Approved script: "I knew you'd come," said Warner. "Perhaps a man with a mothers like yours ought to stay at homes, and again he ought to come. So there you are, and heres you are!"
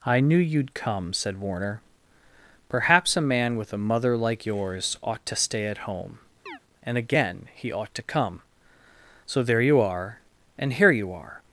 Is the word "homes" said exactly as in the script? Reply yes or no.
no